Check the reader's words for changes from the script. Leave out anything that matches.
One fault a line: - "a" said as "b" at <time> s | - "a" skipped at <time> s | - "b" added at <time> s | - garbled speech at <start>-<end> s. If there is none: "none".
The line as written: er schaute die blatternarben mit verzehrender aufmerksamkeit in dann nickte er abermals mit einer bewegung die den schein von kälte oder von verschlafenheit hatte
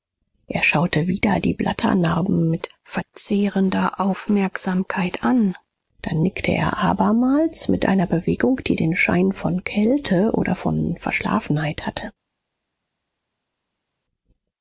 - "wieder" added at 1.1 s
- "in" said as "an" at 5.2 s